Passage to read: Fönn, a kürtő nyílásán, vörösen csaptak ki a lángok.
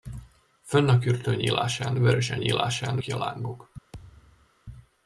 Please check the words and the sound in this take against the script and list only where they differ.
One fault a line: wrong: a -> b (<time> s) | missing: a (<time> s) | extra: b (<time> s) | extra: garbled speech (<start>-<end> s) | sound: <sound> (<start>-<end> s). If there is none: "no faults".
wrong: csaptak -> nyílásán (2.4 s)
sound: thud (3.9-4.5 s)